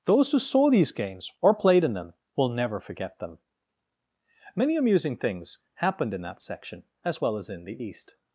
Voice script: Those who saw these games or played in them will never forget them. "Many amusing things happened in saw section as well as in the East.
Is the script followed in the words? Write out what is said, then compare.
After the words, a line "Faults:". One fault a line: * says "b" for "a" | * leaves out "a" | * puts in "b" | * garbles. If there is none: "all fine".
Those who saw these games or played in them will never forget them. "Many amusing things happened in that section as well as in the East.
Faults:
* says "that" for "saw"